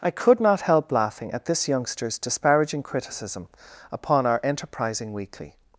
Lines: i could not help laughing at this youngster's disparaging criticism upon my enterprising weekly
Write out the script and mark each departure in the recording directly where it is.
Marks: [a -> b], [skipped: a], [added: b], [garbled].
i could not help laughing at this youngster's disparaging criticism upon [my -> our] enterprising weekly